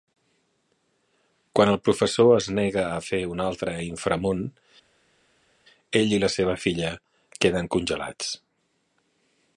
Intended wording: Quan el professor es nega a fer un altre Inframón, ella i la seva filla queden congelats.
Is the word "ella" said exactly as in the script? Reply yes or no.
no